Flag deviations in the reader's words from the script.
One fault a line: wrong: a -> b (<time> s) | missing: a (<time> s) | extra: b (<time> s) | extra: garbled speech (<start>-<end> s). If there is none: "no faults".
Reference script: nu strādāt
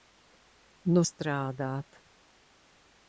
no faults